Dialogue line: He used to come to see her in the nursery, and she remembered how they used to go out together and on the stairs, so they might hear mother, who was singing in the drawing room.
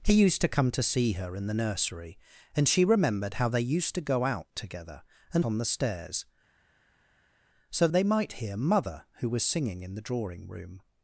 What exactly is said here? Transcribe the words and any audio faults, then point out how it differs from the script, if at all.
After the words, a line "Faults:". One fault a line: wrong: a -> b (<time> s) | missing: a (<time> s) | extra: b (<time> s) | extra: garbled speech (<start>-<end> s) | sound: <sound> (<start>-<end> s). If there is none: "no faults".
He used to come to see her in the nursery, and she remembered how they used to go out together and on the stairs, so they might hear mother, who was singing in the drawing room.
Faults:
no faults